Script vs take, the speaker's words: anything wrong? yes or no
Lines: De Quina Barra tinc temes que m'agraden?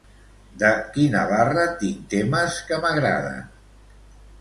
no